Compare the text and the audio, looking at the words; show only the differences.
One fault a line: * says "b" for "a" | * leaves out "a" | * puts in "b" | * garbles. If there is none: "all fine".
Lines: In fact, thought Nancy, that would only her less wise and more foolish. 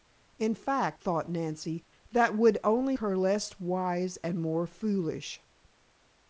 all fine